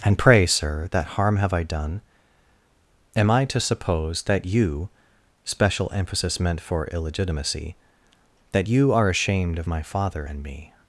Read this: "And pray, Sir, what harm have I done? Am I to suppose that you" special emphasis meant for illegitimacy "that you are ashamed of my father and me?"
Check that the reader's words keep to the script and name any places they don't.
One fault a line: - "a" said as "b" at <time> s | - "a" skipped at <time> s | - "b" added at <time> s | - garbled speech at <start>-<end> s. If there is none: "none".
- "what" said as "that" at 0.9 s